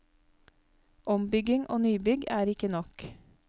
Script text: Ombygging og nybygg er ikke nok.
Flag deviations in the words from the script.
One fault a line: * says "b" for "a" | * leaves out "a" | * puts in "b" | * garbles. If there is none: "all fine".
all fine